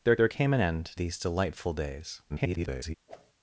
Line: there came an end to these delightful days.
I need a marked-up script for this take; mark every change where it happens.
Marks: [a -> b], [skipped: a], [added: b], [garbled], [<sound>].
there [added: there] came an end [skipped: to] these delightful days. [garbled] [whoosh]